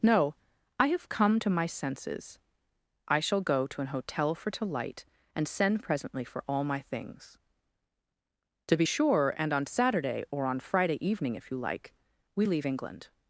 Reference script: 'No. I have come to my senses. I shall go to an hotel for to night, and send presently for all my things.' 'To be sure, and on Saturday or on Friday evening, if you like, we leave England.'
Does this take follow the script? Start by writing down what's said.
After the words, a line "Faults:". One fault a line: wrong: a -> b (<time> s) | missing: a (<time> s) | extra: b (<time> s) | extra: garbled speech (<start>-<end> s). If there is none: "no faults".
'No. I have come to my senses. I shall go to an hotel for to light, and send presently for all my things.' 'To be sure, and on Saturday or on Friday evening, if you like, we leave England.'
Faults:
wrong: night -> light (4.7 s)